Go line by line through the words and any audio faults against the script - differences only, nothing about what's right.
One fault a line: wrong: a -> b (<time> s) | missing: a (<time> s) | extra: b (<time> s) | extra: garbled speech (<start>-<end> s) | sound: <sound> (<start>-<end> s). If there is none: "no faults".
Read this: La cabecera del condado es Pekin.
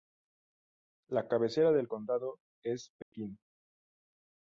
sound: dropout (3.0-3.1 s)